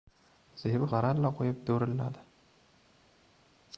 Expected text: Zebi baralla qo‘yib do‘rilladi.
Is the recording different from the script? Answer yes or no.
no